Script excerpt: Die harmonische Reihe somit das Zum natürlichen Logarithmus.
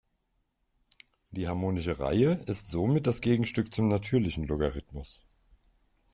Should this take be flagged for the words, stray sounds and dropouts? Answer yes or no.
yes